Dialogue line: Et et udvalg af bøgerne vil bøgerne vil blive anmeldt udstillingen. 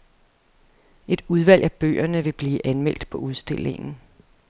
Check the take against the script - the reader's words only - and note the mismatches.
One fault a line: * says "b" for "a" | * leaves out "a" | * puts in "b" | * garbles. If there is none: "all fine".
* leaves out "et"
* leaves out "bøgerne vil"
* puts in "på"